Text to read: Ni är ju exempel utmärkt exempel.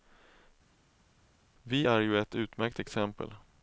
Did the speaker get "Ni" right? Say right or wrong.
wrong